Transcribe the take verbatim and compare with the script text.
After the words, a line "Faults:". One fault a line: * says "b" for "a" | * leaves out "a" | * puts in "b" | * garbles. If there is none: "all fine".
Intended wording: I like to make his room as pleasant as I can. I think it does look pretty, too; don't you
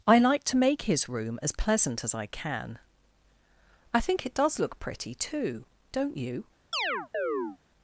I like to make his room as pleasant as I can. I think it does look pretty, too; don't you
Faults:
all fine